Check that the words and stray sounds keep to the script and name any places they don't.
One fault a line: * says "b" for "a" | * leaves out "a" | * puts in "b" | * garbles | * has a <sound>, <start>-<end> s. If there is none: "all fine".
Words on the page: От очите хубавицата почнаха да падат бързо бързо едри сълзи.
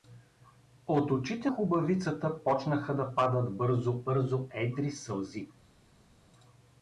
all fine